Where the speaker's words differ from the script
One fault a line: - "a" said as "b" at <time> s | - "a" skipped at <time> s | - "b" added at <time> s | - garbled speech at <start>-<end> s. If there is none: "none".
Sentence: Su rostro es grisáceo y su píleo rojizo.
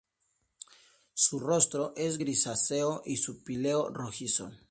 none